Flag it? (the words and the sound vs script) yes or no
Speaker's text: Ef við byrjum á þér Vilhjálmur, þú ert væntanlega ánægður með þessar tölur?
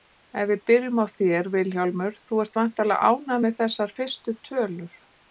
yes